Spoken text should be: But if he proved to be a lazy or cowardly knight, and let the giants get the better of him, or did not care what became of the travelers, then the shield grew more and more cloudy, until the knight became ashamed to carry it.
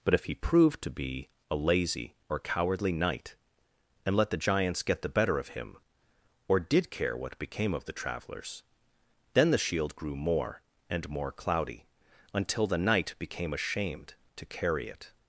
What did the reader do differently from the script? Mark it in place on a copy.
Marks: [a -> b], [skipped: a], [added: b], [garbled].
But if he proved to be a lazy or cowardly knight, and let the giants get the better of him, or did [skipped: not] care what became of the travelers, then the shield grew more and more cloudy, until the knight became ashamed to carry it.